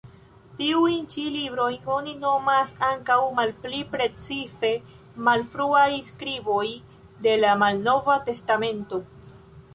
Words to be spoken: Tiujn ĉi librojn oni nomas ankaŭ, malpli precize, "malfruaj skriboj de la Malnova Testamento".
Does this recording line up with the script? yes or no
yes